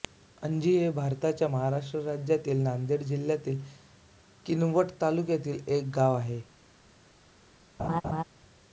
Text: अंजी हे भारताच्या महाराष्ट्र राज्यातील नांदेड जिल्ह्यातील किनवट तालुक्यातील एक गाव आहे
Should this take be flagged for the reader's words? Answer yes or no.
no